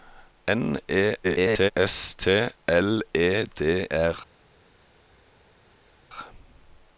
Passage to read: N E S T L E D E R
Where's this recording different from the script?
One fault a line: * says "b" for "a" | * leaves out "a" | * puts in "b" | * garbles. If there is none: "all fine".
* garbles
* leaves out "E"